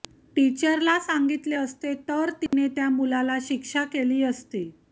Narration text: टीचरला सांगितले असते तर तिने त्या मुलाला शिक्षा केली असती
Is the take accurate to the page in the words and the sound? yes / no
no